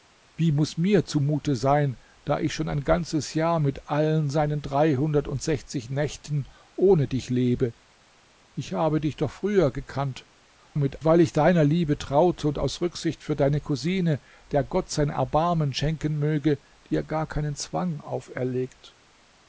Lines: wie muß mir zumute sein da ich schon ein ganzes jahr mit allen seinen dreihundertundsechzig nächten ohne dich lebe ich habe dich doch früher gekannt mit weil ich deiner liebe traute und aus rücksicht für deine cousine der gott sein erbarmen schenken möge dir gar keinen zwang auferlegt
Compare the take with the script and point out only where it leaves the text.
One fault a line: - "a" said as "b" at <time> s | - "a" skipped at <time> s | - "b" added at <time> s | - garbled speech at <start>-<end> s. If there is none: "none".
none